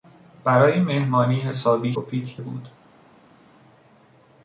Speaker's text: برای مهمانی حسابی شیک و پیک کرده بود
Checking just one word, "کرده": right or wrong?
wrong